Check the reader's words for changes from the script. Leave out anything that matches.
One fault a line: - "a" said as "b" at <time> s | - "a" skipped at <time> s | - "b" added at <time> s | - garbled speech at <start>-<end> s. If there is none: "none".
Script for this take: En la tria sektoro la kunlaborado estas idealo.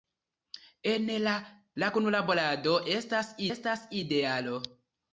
- "tria sektoro" skipped at 1.3 s
- "estas" added at 3.5 s